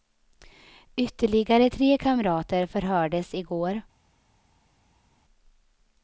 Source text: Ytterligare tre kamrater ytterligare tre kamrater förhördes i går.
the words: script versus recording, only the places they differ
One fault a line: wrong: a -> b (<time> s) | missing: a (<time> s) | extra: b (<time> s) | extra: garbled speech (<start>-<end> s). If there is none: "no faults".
missing: ytterligare tre kamrater (2.7 s)